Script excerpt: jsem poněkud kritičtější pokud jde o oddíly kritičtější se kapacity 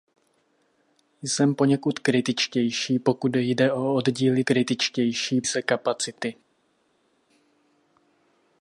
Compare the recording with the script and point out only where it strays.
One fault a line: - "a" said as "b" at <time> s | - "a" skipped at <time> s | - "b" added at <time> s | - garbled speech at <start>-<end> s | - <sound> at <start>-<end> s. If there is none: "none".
none